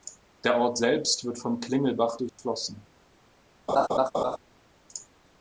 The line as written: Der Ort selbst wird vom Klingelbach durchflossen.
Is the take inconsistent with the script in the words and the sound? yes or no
yes